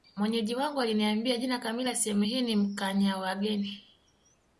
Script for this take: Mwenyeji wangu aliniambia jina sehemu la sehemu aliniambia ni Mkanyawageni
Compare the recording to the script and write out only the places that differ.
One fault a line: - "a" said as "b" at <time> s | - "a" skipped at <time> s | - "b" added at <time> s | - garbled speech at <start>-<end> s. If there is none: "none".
- "sehemu" said as "kamili" at 1.6 s
- "aliniambia" said as "hii" at 2.2 s